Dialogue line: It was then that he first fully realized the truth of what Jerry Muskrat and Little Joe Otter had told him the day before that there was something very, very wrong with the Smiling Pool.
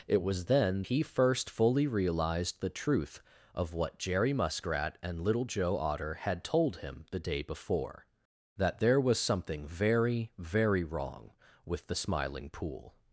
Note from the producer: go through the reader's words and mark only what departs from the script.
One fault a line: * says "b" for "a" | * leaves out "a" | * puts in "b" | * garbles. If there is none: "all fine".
* leaves out "that"